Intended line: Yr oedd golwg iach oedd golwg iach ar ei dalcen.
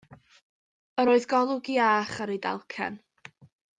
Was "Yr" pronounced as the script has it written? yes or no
yes